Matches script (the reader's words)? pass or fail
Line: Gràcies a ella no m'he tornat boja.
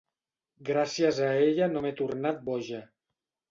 pass